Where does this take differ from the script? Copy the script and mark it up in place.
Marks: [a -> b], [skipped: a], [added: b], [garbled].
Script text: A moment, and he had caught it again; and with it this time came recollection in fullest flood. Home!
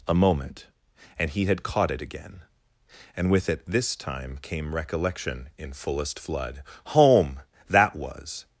A moment, and he had caught it again; and with it this time came recollection in fullest flood. Home! [added: That was]